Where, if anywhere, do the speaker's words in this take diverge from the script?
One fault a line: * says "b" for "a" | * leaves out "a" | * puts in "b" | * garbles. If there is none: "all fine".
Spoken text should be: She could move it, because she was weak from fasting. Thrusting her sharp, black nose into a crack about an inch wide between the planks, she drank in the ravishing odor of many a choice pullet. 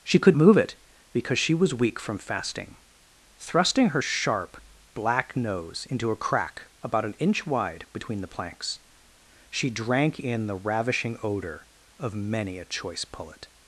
all fine